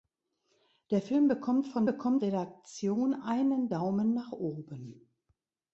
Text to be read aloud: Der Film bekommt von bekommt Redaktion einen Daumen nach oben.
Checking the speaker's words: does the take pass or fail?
pass